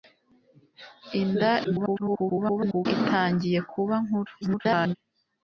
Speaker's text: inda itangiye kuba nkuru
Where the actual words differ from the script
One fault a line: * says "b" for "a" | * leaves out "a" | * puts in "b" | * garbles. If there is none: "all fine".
* garbles
* garbles